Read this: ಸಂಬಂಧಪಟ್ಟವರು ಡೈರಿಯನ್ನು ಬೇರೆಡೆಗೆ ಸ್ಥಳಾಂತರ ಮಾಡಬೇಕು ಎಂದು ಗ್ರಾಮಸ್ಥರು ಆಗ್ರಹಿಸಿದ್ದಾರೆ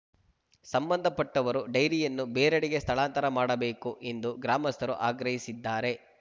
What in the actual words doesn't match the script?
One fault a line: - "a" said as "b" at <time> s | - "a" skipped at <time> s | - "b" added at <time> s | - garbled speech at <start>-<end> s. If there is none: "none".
none